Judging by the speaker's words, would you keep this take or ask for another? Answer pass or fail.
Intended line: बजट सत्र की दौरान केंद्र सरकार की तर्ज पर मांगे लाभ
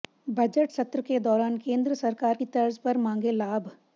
fail